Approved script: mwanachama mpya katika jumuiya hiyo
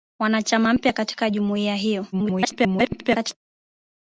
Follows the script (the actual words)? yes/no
no